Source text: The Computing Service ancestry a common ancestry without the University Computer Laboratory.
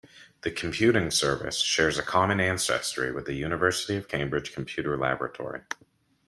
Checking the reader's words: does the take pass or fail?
fail